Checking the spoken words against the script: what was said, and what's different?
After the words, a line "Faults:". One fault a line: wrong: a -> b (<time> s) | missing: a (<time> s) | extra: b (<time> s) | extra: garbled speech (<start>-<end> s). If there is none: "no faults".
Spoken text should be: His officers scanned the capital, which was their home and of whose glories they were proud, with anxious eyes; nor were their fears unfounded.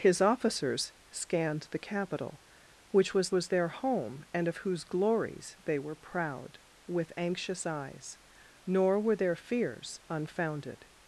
His officers scanned the capital, which was was their home and of whose glories they were proud, with anxious eyes; nor were their fears unfounded.
Faults:
extra: was (3.3 s)